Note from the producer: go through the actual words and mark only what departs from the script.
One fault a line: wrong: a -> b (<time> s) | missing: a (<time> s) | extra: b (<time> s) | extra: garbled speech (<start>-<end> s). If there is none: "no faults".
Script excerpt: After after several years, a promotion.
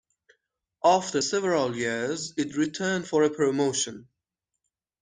missing: after (1.2 s)
extra: it returned for (2.4 s)